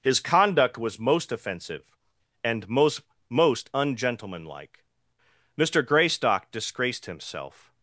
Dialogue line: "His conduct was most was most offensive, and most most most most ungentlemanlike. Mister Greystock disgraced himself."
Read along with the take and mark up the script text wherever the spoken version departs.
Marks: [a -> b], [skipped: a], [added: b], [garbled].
"His conduct was most [skipped: was most] offensive, and most most [skipped: most most] ungentlemanlike. Mister Greystock disgraced himself."